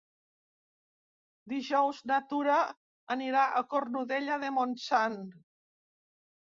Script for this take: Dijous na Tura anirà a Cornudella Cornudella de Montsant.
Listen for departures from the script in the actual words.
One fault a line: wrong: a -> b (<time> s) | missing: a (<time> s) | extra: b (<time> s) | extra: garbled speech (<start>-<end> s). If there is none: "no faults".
missing: Cornudella (4.4 s)